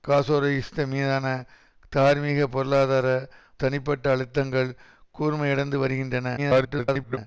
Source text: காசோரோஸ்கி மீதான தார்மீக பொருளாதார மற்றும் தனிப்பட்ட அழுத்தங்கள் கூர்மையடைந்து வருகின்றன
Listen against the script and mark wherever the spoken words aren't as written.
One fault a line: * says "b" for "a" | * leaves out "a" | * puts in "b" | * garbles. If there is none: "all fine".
* leaves out "மற்றும்"
* garbles